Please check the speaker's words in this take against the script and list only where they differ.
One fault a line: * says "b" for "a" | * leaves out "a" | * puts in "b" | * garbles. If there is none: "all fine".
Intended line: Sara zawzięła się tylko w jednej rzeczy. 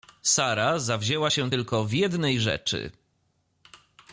all fine